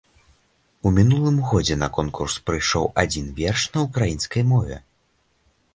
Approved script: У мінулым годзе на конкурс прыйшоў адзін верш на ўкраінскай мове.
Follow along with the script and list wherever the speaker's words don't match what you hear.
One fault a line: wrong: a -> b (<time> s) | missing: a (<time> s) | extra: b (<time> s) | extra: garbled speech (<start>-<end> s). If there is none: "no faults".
no faults